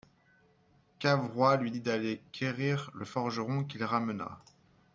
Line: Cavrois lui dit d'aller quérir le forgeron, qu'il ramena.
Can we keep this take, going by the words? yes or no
yes